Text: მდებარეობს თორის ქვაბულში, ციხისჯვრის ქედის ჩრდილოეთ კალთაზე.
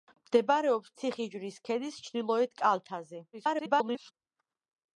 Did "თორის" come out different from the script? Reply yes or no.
yes